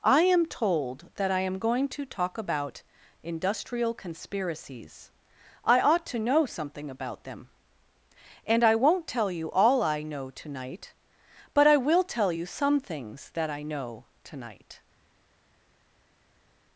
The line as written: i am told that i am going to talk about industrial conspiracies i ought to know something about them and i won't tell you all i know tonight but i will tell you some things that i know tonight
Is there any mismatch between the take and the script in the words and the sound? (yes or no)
no